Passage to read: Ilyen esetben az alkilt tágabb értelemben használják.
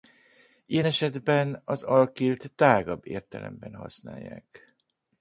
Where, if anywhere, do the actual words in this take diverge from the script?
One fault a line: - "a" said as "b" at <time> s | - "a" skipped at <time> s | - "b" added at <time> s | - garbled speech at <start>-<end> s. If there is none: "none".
none